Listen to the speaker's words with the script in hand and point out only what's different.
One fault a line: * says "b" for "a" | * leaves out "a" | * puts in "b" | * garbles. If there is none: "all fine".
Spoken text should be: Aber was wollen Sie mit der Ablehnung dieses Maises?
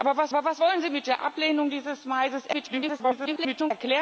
* puts in "aber was"
* garbles